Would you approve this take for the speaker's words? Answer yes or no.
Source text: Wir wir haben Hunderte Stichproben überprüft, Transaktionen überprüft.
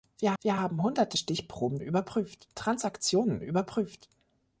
yes